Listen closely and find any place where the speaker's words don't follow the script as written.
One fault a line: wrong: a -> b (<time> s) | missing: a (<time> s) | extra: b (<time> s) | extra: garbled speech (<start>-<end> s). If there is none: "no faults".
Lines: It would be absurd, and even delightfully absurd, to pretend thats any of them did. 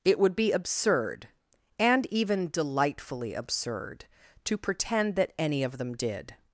wrong: thats -> that (5.2 s)